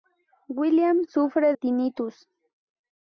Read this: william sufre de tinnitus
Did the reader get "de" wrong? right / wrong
wrong